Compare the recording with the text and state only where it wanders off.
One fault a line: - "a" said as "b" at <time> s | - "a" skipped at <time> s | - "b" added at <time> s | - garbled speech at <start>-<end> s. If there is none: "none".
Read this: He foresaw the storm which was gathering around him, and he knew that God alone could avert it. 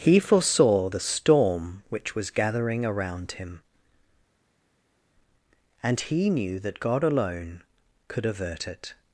none